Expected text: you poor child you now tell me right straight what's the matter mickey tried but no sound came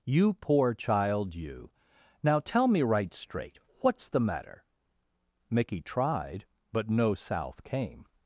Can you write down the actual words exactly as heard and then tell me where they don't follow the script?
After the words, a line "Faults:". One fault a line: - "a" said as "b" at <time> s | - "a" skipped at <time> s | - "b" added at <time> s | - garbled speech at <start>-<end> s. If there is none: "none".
you poor child you now tell me right straight what's the matter mickey tried but no south came
Faults:
- "sound" said as "south" at 7.1 s